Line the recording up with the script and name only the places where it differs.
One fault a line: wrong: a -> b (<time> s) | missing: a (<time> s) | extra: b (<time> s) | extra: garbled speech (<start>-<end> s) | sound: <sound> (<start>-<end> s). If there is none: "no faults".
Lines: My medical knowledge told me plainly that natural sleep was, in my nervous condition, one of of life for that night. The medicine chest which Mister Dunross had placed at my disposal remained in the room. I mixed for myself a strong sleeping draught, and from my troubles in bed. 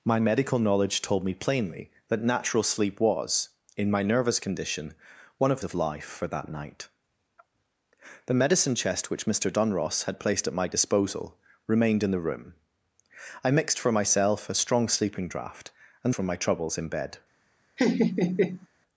sound: laugh (17.8-18.7 s)